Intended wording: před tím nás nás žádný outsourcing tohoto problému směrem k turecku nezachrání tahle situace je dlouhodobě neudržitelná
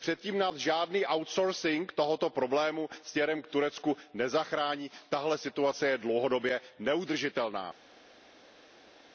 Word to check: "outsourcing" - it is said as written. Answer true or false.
true